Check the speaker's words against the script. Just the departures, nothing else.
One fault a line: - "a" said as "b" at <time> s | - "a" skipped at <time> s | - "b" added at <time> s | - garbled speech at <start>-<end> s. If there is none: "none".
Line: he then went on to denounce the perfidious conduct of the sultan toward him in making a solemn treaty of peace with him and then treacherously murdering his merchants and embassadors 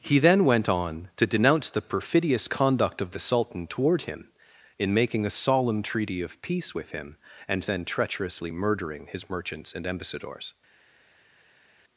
none